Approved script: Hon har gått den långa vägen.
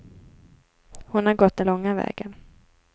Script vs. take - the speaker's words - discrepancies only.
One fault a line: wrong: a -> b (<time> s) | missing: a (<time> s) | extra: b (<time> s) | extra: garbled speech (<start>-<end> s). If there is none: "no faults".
no faults